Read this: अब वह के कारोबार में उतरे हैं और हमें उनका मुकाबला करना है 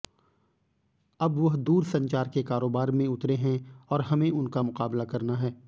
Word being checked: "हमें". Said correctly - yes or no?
yes